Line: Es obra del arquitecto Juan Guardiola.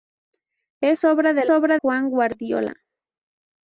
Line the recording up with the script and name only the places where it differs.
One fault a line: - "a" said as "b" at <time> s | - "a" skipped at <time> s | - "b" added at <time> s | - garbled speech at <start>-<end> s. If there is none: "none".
- "arquitecto" said as "obra" at 1.5 s